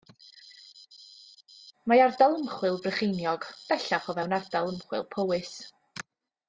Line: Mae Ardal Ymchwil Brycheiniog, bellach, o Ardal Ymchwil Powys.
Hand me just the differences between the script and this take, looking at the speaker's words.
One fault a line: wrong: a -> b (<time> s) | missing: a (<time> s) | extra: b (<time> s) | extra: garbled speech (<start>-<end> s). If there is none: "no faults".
extra: fewn (4.2 s)